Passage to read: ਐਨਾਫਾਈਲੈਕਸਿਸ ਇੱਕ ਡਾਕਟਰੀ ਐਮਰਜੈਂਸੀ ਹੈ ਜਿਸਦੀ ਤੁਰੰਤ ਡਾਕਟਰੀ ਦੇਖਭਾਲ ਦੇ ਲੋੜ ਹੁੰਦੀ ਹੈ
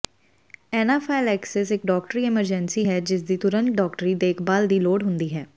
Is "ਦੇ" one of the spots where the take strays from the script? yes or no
yes